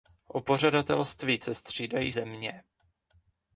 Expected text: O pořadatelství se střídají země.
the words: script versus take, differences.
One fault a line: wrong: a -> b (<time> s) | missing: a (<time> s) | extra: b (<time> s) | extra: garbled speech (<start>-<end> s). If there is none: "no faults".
no faults